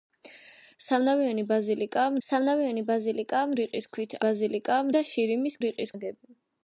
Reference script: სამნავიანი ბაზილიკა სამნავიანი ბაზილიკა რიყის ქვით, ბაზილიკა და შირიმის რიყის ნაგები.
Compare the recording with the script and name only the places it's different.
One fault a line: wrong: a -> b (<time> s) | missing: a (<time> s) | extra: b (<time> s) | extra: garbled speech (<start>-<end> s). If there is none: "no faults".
no faults